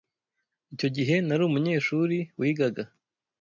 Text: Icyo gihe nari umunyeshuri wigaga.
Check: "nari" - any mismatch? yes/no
no